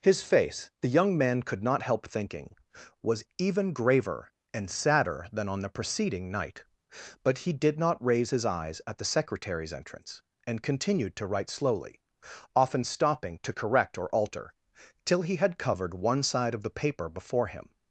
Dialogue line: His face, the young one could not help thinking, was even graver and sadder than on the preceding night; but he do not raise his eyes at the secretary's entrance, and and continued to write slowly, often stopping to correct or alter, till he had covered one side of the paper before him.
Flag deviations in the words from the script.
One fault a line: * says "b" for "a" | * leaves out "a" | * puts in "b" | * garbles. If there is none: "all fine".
* says "man" for "one"
* says "did" for "do"
* leaves out "and"